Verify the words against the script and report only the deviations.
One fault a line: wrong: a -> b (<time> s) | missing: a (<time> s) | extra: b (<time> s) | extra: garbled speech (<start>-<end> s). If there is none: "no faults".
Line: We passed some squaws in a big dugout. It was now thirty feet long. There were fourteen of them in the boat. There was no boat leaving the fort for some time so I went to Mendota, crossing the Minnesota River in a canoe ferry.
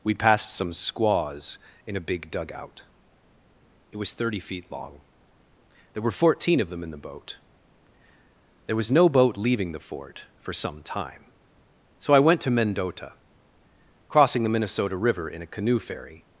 missing: now (4.1 s)